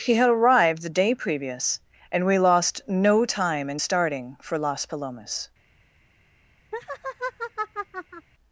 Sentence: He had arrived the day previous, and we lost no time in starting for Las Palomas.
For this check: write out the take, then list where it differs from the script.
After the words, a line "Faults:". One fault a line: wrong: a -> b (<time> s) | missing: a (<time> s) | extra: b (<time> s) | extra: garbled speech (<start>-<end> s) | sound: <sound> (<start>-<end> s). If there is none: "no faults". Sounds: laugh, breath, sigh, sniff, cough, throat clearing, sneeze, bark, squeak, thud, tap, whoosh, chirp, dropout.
He had arrived the day previous, and we lost no time in starting for Las Palomas.
Faults:
sound: laugh (6.7-8.3 s)